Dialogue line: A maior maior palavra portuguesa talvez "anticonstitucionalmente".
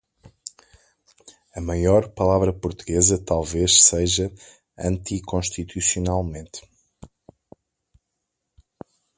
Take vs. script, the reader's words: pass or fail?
fail